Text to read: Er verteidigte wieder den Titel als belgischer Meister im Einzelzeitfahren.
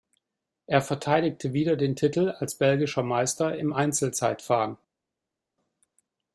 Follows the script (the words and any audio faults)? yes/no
yes